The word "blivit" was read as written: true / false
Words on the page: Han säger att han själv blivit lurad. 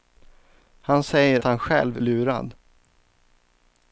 false